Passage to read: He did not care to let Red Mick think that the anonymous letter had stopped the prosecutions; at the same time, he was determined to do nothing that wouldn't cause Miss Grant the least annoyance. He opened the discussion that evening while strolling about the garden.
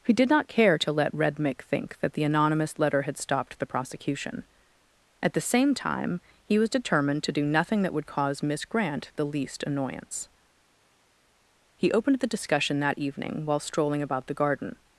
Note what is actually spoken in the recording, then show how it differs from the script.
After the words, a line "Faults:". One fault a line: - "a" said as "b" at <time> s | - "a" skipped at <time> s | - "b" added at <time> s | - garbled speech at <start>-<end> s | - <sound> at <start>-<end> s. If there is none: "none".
He did not care to let Red Mick think that the anonymous letter had stopped the prosecution; at the same time, he was determined to do nothing that would cause Miss Grant the least annoyance. He opened the discussion that evening while strolling about the garden.
Faults:
- "prosecutions" said as "prosecution" at 3.6 s
- "wouldn't" said as "would" at 7.9 s